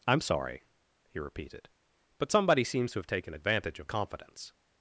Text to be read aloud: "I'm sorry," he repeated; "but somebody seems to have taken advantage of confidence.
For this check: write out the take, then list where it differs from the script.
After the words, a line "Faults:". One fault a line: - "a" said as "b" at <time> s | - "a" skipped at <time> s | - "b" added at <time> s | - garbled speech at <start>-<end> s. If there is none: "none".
"I'm sorry," he repeated; "but somebody seems to have taken advantage of confidence.
Faults:
none